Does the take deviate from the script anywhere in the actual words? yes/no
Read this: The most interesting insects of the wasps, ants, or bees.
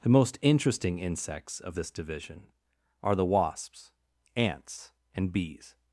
yes